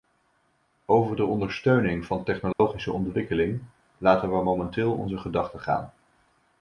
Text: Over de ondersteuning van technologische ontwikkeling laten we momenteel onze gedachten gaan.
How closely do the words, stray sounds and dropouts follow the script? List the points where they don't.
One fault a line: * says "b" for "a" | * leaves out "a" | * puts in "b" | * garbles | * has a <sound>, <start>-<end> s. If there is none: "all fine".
* has a dropout, 2.5-2.6 s